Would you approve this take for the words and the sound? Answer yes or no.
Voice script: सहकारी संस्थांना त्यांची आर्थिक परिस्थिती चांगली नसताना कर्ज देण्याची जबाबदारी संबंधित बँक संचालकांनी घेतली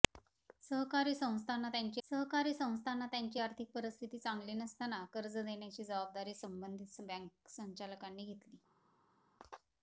no